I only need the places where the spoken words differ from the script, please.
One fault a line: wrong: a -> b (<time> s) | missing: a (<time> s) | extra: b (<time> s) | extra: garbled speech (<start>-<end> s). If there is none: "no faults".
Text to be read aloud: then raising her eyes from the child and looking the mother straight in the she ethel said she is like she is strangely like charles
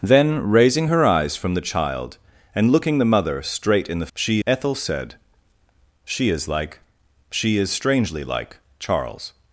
no faults